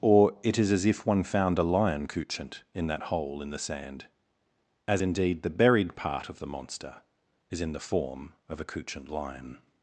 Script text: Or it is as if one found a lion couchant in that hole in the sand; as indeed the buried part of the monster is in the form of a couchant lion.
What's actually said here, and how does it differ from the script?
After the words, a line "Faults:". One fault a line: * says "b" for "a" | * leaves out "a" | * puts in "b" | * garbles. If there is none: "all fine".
Or it is as if one found a lion couchant in that hole in the sand; as indeed the buried part of the monster is in the form of a couchant lion.
Faults:
all fine